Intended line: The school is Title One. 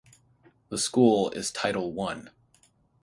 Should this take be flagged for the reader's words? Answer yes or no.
no